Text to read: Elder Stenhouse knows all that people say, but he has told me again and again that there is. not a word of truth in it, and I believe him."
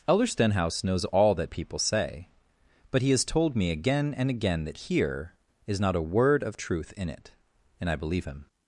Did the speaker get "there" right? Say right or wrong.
wrong